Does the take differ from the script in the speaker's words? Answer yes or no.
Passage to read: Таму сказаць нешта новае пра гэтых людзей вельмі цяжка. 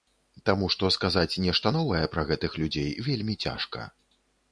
yes